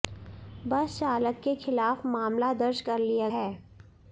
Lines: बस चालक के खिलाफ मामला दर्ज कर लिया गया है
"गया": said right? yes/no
no